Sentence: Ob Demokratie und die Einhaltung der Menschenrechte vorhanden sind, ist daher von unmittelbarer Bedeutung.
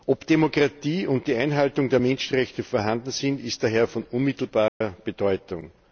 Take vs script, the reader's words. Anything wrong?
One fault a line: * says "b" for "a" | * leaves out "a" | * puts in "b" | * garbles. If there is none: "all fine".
all fine